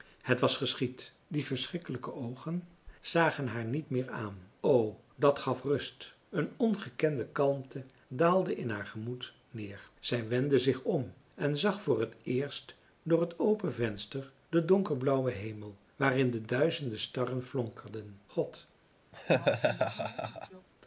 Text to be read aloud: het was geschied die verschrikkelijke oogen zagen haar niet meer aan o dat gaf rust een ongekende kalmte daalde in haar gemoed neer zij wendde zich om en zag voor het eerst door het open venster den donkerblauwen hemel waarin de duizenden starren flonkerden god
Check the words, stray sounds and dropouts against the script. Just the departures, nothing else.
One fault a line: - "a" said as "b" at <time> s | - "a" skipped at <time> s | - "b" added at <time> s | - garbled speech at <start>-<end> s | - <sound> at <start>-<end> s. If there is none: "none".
- laugh at 19.1-20.7 s